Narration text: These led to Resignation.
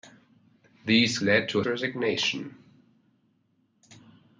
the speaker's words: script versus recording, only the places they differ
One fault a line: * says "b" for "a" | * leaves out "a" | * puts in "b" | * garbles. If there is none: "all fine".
all fine